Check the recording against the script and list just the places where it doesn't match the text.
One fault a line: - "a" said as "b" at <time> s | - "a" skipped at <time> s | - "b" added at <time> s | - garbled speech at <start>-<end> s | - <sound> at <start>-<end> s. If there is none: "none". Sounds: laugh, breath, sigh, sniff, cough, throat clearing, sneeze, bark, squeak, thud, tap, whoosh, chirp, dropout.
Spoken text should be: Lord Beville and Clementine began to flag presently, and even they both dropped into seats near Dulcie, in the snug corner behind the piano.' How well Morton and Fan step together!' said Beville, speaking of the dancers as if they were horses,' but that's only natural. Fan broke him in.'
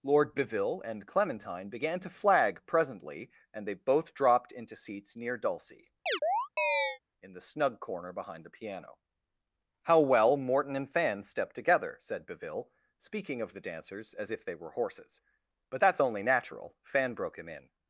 - "even" skipped at 3.7 s
- chirp at 6.1-7.0 s